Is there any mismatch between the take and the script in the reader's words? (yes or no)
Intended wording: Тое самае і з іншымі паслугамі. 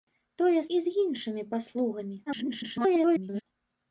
yes